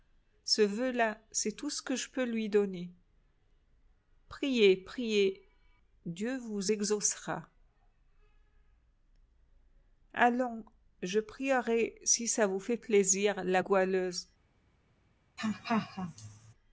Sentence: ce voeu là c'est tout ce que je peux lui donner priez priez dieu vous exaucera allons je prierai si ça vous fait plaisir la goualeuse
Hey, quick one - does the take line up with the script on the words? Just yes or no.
yes